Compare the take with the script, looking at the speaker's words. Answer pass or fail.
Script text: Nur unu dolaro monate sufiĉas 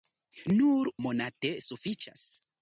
fail